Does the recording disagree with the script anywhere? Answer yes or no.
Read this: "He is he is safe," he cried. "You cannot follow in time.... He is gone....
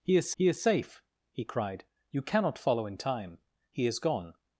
no